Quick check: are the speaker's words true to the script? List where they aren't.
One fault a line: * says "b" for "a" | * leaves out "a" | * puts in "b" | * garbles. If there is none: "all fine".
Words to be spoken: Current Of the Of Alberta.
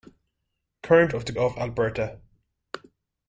all fine